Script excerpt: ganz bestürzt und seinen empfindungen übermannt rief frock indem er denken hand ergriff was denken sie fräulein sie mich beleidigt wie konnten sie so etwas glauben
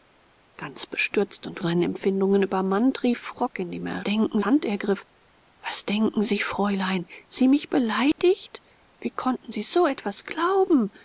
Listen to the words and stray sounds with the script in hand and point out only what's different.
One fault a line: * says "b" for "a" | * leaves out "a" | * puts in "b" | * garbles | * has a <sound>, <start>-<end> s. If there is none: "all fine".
* has a dropout, 8.1-8.2 s